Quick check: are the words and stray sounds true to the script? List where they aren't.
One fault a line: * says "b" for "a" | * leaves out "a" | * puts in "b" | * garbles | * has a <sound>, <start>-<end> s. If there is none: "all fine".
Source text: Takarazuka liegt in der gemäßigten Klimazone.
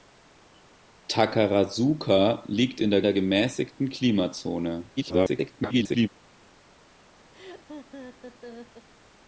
* puts in "der"
* garbles
* has a laugh, 7.3-8.9 s